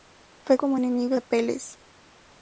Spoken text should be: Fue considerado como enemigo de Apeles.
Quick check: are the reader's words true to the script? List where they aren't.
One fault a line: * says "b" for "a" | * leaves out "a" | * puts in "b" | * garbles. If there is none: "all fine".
* leaves out "considerado"
* leaves out "de"